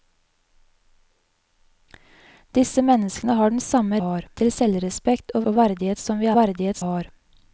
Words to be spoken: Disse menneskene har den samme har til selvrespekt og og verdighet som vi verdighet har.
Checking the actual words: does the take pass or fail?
pass